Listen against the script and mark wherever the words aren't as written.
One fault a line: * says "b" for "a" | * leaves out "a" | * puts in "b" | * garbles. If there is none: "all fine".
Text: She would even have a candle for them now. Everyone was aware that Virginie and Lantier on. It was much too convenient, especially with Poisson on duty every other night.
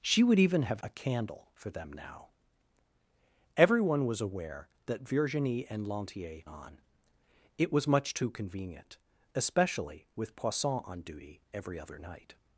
all fine